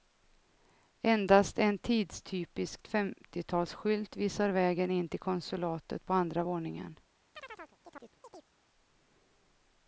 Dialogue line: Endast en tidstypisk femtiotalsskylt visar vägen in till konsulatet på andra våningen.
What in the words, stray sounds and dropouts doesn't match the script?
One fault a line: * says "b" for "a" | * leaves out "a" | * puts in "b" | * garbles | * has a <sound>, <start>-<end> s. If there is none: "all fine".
* has a chirp, 7.3-8.5 s